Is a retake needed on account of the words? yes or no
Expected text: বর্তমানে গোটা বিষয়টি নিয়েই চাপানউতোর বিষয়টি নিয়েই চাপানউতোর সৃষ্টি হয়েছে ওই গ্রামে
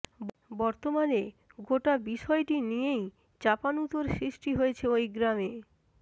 yes